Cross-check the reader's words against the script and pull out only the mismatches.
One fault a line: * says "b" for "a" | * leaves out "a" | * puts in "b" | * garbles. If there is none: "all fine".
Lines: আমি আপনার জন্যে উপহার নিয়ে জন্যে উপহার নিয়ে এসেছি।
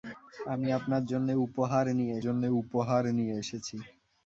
all fine